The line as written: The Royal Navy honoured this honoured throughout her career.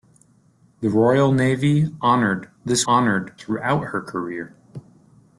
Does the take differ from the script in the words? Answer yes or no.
no